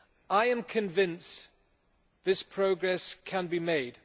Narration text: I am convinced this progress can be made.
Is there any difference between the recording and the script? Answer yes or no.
no